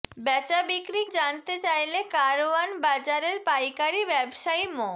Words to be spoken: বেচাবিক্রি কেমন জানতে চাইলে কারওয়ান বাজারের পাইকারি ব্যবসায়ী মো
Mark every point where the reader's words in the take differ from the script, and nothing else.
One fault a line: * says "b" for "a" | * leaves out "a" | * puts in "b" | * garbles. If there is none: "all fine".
* leaves out "কেমন"